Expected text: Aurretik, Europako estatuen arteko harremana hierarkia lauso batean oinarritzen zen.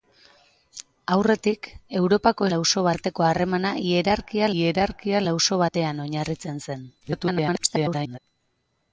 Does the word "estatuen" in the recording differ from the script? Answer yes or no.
yes